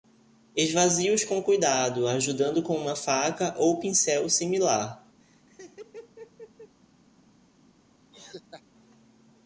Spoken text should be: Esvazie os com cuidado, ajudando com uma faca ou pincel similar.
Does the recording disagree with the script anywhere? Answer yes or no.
no